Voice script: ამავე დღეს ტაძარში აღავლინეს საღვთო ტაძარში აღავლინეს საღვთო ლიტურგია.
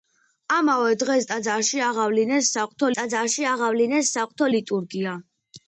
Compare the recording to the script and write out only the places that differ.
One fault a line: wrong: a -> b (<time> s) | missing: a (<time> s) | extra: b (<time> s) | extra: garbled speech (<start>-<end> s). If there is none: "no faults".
no faults